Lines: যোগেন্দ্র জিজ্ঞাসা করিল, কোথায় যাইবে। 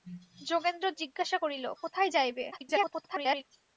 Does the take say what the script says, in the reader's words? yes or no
no